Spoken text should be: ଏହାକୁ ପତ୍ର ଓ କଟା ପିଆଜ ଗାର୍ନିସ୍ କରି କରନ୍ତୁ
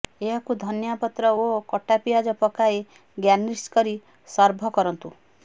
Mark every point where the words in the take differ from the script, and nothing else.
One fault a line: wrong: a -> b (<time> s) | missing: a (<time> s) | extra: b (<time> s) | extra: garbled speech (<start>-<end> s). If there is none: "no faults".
extra: ଧନିଆ (0.6 s)
extra: ପକାଇ (2.4 s)
extra: ସର୍ଭ (4.3 s)